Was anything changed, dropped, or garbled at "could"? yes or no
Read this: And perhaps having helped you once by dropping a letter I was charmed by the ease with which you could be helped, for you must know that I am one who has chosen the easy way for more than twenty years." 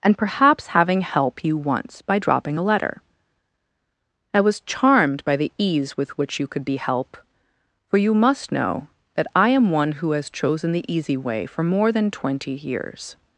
no